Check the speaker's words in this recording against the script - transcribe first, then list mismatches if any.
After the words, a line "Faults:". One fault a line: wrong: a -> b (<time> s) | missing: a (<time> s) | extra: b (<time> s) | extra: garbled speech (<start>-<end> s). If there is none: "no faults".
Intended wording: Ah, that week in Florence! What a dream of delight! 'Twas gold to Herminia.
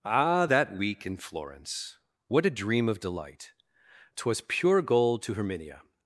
Ah, that week in Florence! What a dream of delight! 'Twas pure gold to Herminia.
Faults:
extra: pure (4.5 s)